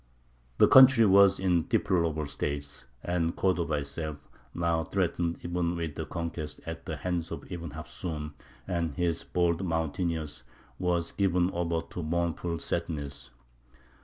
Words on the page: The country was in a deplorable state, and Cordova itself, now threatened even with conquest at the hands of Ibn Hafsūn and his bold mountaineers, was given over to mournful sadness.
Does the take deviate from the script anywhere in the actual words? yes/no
no